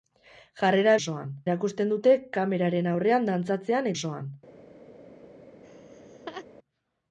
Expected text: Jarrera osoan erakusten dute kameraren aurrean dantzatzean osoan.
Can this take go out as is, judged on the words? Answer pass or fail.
pass